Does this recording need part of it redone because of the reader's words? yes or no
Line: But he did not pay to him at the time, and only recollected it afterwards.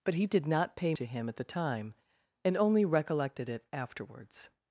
no